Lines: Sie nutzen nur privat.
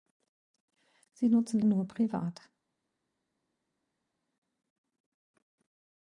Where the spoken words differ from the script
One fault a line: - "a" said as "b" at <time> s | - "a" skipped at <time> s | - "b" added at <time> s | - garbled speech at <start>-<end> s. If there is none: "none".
none